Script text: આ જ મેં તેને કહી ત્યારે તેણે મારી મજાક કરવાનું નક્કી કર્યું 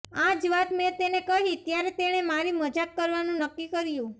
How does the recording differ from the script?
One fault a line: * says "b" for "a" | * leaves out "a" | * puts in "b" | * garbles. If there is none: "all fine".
* puts in "વાત"